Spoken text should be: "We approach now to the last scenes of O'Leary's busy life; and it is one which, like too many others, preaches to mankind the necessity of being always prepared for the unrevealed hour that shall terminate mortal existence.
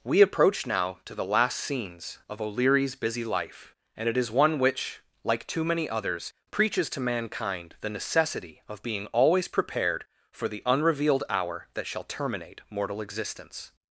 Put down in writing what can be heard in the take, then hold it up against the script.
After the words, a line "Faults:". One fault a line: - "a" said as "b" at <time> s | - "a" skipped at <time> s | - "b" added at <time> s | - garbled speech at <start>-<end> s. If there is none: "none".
"We approach now to the last scenes of O'Leary's busy life; and it is one which, like too many others, preaches to mankind the necessity of being always prepared for the unrevealed hour that shall terminate mortal existence.
Faults:
none